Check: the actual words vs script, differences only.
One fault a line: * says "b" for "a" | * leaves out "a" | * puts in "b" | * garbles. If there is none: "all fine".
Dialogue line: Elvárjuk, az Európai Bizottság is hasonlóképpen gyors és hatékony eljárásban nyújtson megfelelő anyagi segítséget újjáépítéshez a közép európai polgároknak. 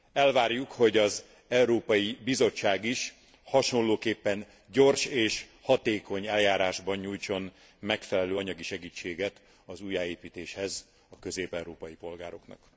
* puts in "hogy"
* puts in "az"